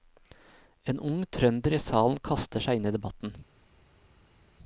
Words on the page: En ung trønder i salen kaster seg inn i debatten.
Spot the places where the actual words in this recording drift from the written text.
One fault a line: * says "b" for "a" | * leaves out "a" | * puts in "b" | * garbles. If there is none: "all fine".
all fine